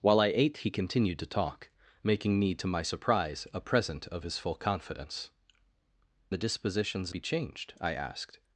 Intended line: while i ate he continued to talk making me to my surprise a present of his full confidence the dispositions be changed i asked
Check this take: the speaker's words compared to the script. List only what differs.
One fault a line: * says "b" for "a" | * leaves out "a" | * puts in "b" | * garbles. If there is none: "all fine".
all fine